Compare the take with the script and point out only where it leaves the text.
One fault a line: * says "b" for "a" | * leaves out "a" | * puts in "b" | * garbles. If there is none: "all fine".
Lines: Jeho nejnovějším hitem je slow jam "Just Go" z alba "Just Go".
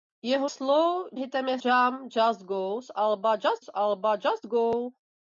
* says "slow" for "nejnovějším"
* leaves out "slow"
* puts in "z alba Just"